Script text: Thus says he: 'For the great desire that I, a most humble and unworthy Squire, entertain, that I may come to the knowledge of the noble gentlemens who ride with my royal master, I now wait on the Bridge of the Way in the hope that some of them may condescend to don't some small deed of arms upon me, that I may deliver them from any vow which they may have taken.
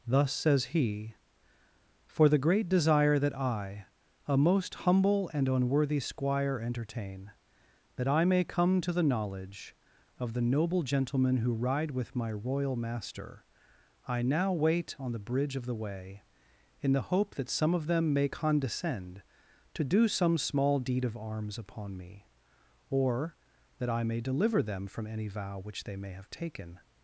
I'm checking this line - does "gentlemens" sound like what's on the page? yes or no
no